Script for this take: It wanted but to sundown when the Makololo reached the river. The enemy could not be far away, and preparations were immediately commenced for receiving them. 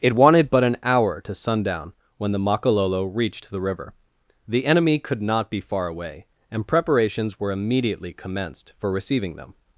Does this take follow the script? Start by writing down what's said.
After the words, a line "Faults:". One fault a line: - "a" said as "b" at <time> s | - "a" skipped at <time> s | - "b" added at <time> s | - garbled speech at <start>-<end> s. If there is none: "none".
It wanted but an hour to sundown when the Makololo reached the river. The enemy could not be far away, and preparations were immediately commenced for receiving them.
Faults:
- "an hour" added at 0.6 s